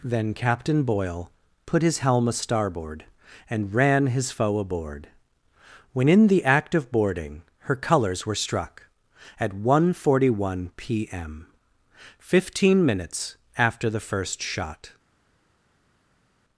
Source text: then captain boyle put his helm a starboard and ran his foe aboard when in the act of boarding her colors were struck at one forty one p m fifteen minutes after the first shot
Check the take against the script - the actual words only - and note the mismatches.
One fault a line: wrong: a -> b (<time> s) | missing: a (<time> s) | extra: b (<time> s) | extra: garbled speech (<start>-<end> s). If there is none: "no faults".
no faults